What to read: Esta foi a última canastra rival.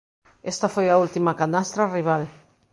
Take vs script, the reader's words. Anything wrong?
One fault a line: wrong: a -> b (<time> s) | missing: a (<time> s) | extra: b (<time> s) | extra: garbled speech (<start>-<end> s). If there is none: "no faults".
no faults